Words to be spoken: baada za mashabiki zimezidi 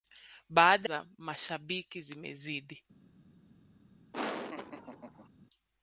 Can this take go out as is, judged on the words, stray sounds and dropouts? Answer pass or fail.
fail